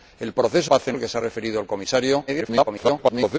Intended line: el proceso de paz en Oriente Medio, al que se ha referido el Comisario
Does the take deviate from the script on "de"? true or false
true